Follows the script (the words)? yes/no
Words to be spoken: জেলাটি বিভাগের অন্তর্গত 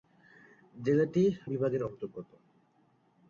yes